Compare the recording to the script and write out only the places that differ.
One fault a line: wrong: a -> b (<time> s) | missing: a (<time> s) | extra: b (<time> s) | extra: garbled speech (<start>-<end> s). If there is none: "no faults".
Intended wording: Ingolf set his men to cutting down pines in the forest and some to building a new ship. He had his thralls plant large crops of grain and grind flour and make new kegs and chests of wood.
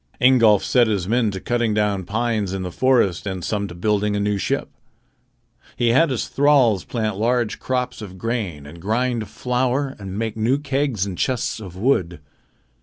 no faults